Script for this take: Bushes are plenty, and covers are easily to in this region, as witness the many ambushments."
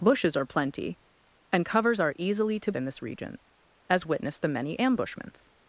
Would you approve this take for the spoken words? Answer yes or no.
yes